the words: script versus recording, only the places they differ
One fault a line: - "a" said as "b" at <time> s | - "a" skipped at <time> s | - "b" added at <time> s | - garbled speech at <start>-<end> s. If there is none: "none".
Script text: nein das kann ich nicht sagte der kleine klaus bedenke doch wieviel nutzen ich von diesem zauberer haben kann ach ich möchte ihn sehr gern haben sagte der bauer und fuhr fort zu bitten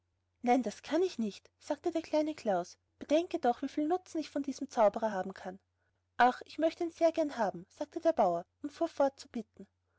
none